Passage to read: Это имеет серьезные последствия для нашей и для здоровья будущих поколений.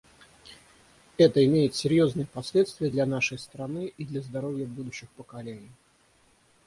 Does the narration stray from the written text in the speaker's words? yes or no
yes